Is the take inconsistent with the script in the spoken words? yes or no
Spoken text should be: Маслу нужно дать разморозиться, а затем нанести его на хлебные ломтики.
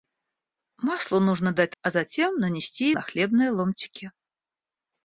yes